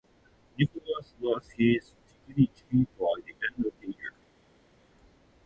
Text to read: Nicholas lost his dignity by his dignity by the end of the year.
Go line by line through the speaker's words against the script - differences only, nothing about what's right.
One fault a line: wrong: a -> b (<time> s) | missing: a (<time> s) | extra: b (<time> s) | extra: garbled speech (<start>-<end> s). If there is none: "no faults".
missing: his dignity by (3.2 s)